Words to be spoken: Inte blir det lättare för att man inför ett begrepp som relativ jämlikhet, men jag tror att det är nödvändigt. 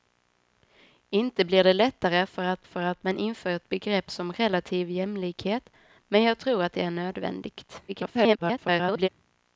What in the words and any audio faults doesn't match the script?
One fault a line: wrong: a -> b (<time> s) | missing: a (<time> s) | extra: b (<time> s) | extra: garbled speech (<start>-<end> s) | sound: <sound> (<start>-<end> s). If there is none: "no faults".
extra: för att (2.6 s)
extra: garbled speech (7.9-9.1 s)